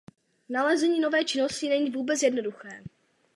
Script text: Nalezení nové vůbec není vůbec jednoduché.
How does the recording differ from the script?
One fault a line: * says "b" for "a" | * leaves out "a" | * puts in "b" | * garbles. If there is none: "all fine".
* says "činnosti" for "vůbec"